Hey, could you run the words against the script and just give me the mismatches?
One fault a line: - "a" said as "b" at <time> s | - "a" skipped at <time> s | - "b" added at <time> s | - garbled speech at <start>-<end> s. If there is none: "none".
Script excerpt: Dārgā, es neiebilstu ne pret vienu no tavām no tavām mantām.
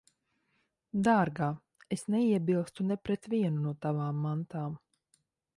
- "no tavām" skipped at 4.3 s